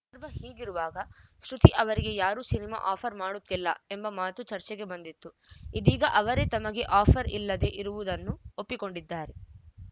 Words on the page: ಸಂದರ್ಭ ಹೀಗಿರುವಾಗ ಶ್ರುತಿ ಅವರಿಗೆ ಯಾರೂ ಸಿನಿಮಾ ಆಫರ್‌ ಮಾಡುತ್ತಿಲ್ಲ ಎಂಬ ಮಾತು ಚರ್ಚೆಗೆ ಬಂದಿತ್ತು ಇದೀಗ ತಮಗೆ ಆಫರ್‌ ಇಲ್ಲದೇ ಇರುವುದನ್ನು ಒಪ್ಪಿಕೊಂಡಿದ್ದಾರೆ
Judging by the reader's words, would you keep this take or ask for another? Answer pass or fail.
fail